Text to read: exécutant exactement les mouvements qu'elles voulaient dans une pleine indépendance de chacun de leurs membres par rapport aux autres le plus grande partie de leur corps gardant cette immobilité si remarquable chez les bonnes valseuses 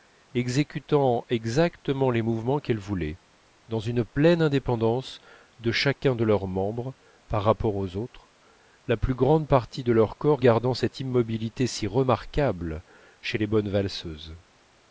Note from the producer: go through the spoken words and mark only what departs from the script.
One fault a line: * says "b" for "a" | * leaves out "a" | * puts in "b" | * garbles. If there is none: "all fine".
* says "la" for "le"